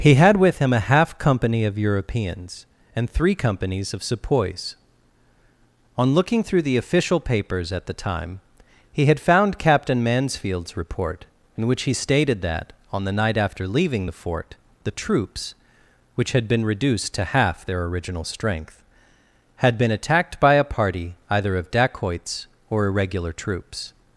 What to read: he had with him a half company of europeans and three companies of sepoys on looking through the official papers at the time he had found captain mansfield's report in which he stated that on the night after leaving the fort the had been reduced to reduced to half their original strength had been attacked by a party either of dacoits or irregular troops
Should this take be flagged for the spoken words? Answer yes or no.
yes